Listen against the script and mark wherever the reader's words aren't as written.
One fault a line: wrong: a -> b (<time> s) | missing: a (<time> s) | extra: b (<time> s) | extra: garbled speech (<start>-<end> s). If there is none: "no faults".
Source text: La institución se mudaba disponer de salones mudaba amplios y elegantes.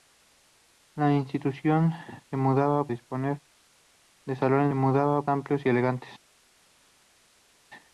no faults